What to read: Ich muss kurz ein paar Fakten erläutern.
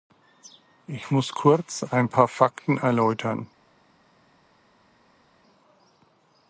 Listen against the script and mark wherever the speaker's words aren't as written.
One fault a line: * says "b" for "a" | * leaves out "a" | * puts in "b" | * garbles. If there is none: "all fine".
all fine